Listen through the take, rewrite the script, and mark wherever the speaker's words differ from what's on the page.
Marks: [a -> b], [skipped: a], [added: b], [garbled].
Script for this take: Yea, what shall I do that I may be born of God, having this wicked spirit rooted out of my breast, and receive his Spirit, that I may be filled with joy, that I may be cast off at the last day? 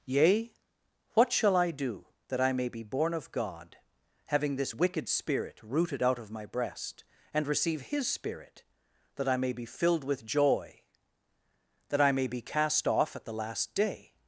Yea, what shall I do that I may be born of God, having this wicked spirit rooted out of my breast, and receive his Spirit, that I may be filled with joy, that I may be cast off at the last day?